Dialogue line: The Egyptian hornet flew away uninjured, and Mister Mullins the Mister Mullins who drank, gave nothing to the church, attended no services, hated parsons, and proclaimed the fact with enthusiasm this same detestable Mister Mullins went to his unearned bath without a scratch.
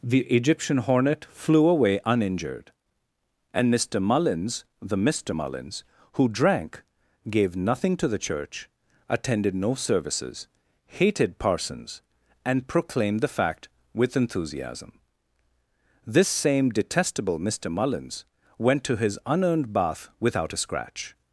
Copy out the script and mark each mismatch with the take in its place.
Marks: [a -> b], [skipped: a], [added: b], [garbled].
The Egyptian hornet flew away uninjured, and Mister Mullins the Mister Mullins who drank, gave nothing to the church, attended no services, hated parsons, and proclaimed the fact with enthusiasm this same detestable Mister Mullins went to his unearned bath without a scratch.